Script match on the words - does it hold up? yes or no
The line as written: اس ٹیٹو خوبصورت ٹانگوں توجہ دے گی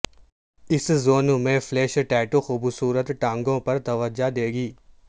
no